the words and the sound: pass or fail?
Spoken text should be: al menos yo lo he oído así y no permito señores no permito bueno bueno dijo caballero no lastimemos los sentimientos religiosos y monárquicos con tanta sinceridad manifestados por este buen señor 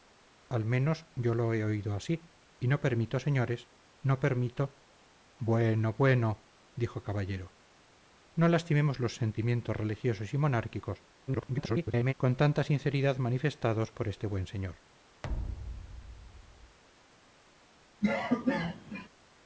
fail